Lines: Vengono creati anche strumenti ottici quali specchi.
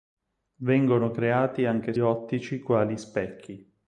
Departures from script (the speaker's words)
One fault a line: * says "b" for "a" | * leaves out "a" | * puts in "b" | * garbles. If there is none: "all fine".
* leaves out "strumenti"